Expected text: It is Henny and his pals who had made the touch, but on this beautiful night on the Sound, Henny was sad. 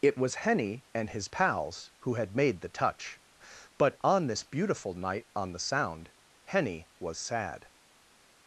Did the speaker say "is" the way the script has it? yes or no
no